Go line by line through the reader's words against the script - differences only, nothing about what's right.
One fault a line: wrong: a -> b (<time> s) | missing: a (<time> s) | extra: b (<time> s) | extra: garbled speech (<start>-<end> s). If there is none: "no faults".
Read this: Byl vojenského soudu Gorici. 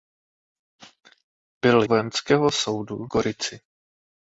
no faults